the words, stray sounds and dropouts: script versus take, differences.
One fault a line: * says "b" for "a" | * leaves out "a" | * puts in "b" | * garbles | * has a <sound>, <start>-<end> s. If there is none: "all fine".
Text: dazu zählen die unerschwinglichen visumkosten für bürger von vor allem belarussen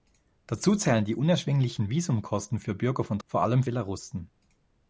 all fine